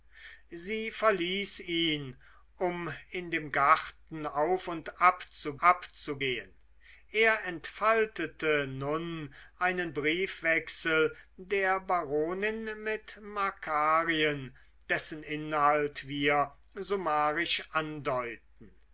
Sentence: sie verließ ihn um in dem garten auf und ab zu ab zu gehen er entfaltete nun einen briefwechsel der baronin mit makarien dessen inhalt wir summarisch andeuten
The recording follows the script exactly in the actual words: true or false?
true